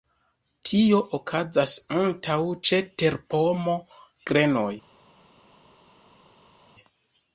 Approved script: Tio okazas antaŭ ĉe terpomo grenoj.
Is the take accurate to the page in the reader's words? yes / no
yes